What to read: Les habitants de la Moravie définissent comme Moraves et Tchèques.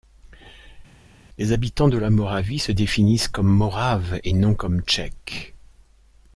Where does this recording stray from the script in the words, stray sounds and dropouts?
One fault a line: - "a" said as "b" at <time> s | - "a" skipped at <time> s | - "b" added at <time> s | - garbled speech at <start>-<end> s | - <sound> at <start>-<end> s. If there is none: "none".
- "se" added at 2.6 s
- "non comme" added at 4.3 s